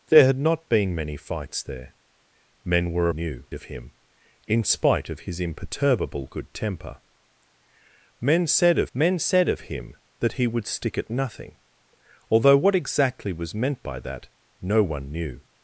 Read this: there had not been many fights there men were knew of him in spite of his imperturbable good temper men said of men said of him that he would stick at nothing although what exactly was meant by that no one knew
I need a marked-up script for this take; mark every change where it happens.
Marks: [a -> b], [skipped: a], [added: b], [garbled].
there had not been many fights there men were knew of him in spite of his imperturbable good temper men said of men said of him that he would stick at nothing although what exactly was meant by that no one knew